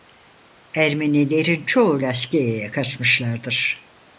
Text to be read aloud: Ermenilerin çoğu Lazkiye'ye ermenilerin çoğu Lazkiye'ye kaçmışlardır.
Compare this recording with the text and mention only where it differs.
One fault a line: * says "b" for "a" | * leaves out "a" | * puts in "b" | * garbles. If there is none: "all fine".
* leaves out "ermenilerin çoğu Lazkiye'ye"